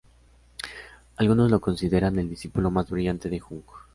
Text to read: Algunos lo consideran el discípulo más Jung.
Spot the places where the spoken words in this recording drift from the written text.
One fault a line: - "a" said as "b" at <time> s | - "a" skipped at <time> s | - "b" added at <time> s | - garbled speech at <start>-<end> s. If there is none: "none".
- "brillante de" added at 2.9 s